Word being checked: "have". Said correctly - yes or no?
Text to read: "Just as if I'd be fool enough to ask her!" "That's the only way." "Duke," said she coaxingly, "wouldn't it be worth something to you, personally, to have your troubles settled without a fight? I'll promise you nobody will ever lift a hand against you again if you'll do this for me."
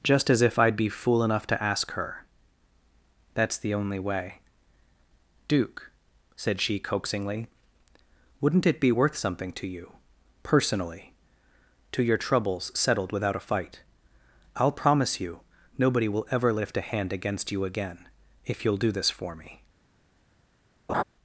no